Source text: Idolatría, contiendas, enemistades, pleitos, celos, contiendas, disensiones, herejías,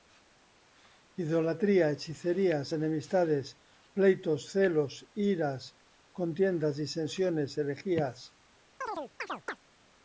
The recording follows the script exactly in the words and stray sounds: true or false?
false